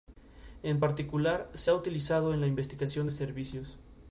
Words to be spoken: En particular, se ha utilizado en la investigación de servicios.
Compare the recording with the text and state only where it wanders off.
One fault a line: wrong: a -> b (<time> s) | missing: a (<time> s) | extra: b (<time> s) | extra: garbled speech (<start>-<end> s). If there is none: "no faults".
no faults